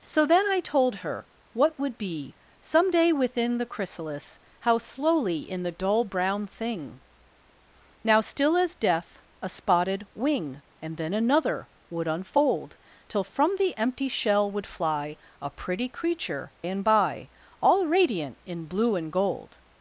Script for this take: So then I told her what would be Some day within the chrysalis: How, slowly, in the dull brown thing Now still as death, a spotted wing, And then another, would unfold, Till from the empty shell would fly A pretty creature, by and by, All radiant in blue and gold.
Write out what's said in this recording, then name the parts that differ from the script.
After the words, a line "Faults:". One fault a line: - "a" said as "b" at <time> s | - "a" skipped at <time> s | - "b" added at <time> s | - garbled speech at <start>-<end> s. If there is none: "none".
So then I told her what would be Some day within the chrysalis: How, slowly, in the dull brown thing Now still as death, a spotted wing, And then another, would unfold, Till from the empty shell would fly A pretty creature, and by, All radiant in blue and gold.
Faults:
- "by" skipped at 16.5 s